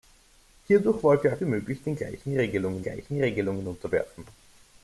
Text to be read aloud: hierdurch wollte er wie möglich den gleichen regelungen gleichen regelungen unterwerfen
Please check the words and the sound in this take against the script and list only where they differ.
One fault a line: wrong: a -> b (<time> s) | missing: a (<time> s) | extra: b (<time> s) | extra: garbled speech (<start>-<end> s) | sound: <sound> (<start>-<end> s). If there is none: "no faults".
no faults